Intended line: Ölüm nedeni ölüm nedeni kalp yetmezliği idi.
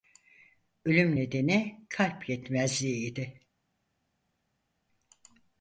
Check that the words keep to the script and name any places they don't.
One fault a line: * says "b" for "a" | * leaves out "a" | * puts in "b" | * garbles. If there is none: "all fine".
* leaves out "ölüm nedeni"